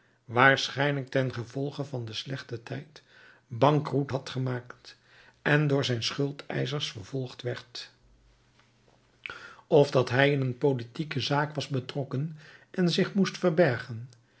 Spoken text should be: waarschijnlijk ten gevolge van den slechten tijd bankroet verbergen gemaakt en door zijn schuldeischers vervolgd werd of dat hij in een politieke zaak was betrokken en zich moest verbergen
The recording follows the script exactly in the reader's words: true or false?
false